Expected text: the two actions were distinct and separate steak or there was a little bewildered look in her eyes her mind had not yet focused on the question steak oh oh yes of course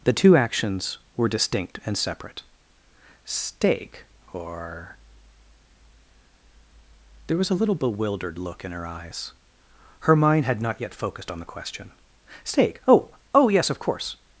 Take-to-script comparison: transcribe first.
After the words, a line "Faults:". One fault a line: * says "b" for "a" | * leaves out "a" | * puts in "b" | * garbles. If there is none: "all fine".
the two actions were distinct and separate steak or there was a little bewildered look in her eyes her mind had not yet focused on the question steak oh oh yes of course
Faults:
all fine